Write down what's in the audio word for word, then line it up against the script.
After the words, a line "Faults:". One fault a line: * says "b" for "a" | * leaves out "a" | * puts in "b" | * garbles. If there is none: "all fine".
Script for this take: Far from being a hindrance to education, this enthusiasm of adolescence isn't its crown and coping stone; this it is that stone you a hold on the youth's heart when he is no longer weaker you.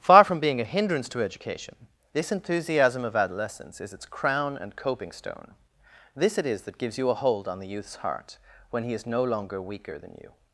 Far from being a hindrance to education, this enthusiasm of adolescence is its crown and coping stone; this it is that gives you a hold on the youth's heart when he is no longer weaker than you.
Faults:
* says "is" for "isn't"
* says "gives" for "stone"
* puts in "than"